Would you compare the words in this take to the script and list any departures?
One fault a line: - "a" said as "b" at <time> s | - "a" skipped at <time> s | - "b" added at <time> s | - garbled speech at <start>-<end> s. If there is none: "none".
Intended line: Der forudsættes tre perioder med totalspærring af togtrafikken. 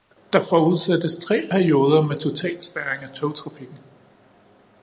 none